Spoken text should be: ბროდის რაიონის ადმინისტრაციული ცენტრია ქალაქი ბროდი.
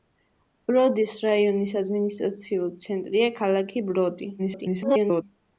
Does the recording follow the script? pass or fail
fail